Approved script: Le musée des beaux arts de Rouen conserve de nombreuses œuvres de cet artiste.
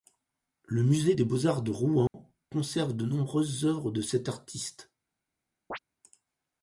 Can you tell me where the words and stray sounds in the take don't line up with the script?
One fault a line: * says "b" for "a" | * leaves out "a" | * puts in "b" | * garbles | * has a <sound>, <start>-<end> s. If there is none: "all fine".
* has a dropout, 2.1-2.1 s
* has a chirp, 5.7-5.8 s